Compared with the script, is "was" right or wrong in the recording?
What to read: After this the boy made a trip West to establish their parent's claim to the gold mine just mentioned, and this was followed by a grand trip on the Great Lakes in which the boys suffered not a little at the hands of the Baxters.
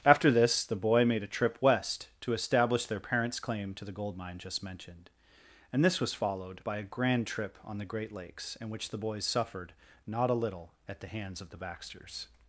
right